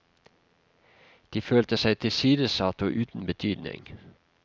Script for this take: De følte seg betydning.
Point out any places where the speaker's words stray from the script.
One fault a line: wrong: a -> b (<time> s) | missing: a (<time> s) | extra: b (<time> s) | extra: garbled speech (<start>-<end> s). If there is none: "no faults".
extra: tilsidesatt og uten (2.0 s)